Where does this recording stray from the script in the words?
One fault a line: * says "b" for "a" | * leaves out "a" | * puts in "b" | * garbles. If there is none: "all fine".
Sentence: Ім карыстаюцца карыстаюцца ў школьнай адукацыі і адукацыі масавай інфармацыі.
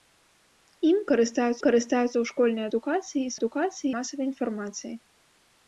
all fine